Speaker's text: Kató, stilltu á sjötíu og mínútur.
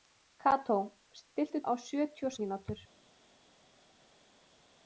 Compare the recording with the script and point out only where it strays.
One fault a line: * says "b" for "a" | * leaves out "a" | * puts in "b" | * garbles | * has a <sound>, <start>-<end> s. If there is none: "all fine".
all fine